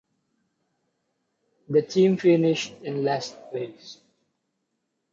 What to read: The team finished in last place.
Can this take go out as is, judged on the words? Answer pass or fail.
pass